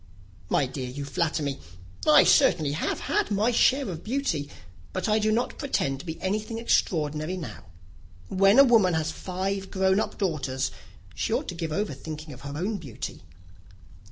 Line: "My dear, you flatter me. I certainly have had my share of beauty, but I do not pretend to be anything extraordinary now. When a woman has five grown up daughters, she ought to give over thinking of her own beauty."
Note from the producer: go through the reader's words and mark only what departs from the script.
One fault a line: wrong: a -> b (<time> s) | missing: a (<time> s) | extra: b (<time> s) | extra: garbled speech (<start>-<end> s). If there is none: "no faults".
no faults